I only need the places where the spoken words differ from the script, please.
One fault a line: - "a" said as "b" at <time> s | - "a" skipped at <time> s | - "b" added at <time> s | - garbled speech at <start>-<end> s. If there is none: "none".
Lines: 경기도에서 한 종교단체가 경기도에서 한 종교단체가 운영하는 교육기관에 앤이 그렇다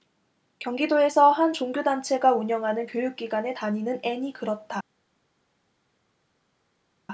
- "경기도에서 한 종교단체가" skipped at 2.3 s
- "다니는" added at 3.5 s